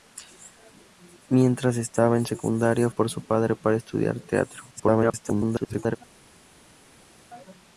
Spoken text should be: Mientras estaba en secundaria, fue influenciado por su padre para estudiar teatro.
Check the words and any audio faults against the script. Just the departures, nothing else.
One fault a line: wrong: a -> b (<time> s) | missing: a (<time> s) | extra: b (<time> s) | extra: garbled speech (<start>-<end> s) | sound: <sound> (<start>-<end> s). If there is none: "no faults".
missing: fue influenciado (2.9 s)
extra: garbled speech (4.7-6.0 s)